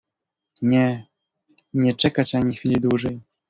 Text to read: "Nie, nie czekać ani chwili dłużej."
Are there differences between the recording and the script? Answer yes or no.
no